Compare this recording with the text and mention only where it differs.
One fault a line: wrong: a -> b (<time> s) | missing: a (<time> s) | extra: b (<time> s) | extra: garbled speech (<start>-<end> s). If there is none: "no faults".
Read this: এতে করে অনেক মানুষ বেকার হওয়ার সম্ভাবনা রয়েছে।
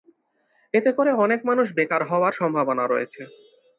no faults